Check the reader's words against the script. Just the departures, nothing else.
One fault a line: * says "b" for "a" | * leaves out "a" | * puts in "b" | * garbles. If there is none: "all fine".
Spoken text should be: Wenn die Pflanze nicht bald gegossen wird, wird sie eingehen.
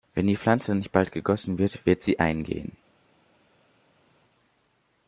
all fine